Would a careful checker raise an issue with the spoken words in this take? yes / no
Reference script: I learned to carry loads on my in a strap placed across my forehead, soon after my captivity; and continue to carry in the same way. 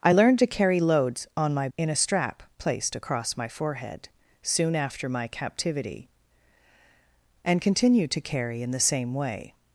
no